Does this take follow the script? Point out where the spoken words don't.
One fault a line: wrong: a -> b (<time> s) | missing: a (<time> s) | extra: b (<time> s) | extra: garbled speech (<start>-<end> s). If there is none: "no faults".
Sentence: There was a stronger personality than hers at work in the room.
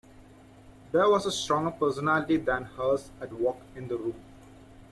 no faults